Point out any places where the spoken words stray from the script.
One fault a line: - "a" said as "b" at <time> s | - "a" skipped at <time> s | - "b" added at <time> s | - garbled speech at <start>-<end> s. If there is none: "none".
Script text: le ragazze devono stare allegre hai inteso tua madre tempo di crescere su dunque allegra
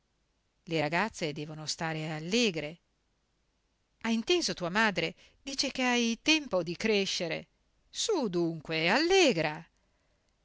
- "dice che hai" added at 5.4 s